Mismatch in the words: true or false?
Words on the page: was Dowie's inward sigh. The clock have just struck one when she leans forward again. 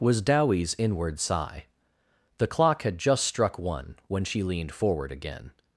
true